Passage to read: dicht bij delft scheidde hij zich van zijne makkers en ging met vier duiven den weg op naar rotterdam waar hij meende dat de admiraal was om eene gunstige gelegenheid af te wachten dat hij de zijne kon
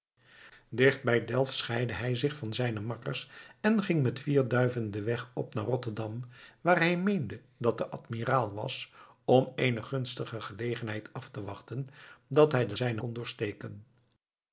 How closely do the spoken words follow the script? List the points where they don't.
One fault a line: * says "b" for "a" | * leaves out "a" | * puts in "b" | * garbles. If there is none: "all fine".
all fine